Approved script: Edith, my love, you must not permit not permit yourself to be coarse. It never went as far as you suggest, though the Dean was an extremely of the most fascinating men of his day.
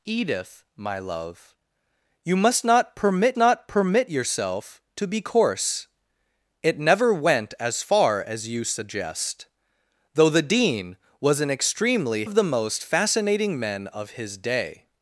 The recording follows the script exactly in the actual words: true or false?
true